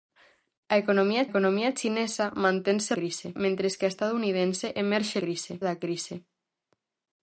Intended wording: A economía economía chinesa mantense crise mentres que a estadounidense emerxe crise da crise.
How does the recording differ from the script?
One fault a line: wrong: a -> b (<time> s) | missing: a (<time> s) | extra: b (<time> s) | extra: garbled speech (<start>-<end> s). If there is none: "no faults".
no faults